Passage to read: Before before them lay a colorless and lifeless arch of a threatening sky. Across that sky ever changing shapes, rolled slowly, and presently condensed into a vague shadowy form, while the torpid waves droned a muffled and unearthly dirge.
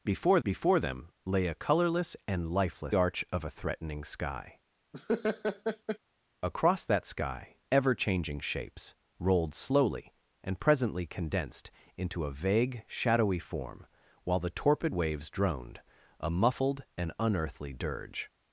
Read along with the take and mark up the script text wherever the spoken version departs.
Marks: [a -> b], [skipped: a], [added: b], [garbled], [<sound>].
Before before them lay a colorless and lifeless arch of a threatening sky. [laugh] Across that sky ever changing shapes, rolled slowly, and presently condensed into a vague shadowy form, while the torpid waves droned a muffled and unearthly dirge.